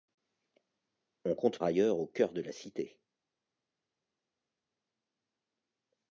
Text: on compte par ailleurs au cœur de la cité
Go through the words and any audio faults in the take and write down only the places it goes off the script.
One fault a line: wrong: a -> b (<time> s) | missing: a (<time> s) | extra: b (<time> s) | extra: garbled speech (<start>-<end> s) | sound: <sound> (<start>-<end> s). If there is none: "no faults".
missing: par (1.6 s)